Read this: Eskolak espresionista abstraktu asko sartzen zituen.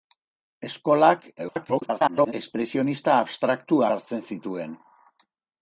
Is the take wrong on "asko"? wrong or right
wrong